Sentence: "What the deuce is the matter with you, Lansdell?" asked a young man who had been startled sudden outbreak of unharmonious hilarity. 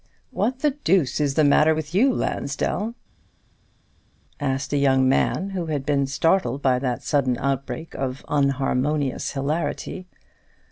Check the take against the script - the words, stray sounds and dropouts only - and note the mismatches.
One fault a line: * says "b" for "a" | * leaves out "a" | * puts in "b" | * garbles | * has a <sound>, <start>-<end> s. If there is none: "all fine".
* puts in "by that"